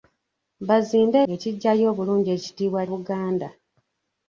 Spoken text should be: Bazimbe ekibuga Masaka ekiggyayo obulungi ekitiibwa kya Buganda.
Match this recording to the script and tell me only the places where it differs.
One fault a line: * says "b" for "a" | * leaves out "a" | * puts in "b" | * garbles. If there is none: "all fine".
* leaves out "ekibuga Masaka"
* leaves out "kya"